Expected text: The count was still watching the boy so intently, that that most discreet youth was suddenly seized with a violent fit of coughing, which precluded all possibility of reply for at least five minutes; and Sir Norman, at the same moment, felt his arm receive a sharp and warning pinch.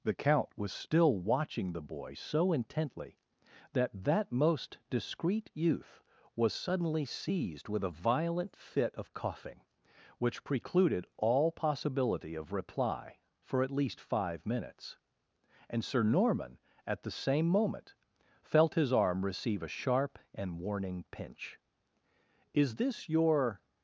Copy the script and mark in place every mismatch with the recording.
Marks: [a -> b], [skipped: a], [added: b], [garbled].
The count was still watching the boy so intently, that that most discreet youth was suddenly seized with a violent fit of coughing, which precluded all possibility of reply for at least five minutes; and Sir Norman, at the same moment, felt his arm receive a sharp and warning pinch. [added: Is this your]